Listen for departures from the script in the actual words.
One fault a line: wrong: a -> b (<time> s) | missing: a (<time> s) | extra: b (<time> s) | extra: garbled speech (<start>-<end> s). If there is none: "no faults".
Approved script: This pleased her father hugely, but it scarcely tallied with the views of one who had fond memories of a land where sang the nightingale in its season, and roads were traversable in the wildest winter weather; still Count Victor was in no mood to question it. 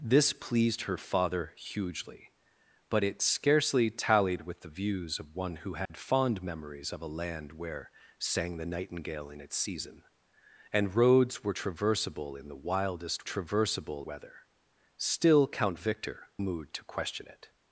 wrong: winter -> traversable (13.2 s)
missing: was in no (16.3 s)